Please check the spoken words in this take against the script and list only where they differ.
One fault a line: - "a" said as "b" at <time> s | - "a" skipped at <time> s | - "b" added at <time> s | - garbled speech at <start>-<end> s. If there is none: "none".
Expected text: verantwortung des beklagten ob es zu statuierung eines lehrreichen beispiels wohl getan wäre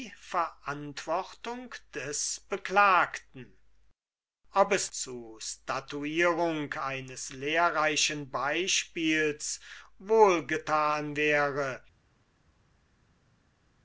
none